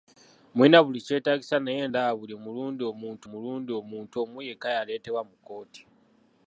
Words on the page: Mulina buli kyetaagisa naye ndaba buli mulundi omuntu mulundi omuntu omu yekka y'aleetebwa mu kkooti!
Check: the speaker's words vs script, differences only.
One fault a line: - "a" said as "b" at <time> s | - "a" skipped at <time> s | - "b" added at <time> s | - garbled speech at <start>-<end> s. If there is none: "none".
none